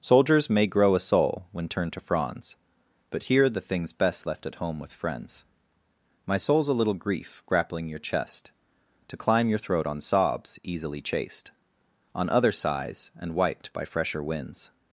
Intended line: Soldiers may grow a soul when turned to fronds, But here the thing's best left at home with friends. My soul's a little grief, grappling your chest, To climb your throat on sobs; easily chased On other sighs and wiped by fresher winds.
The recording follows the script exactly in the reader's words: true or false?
true